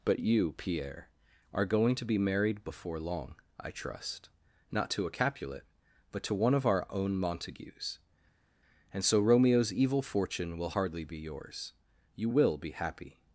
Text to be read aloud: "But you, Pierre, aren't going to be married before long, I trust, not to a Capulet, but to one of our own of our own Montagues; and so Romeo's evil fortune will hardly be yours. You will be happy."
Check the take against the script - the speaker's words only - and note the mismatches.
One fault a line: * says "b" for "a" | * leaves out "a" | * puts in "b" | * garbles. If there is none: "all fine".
* says "are" for "aren't"
* leaves out "of our own"